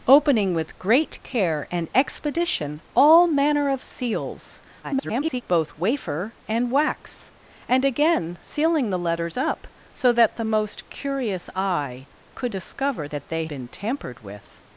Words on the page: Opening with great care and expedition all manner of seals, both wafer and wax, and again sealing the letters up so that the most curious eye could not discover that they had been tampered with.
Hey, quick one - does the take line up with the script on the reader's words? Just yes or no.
no